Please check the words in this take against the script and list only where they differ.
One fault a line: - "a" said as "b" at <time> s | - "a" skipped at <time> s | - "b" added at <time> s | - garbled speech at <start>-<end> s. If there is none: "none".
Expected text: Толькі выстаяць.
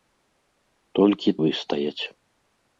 none